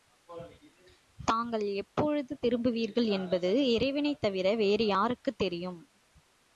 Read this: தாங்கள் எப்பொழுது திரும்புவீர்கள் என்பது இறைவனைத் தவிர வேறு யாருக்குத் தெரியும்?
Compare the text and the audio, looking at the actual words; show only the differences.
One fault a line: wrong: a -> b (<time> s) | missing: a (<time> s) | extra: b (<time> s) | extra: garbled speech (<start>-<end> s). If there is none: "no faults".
no faults